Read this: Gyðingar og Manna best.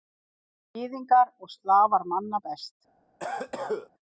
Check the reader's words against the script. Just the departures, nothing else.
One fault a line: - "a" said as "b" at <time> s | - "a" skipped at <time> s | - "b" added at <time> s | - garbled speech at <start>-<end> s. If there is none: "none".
- "Slafar" added at 1.6 s